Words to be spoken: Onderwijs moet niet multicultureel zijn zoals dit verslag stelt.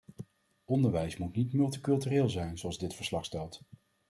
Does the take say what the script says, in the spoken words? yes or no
yes